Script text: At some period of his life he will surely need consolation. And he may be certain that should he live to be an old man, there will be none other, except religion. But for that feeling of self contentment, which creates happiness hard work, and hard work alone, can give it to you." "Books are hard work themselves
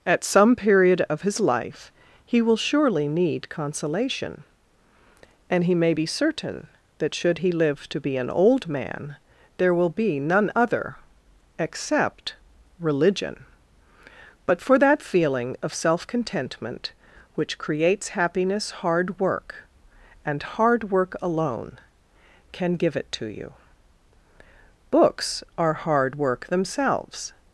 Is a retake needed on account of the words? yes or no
no